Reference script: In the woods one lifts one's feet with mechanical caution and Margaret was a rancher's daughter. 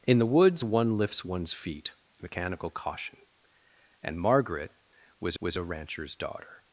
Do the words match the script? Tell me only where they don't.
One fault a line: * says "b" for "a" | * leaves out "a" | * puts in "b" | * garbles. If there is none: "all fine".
* leaves out "with"
* puts in "was"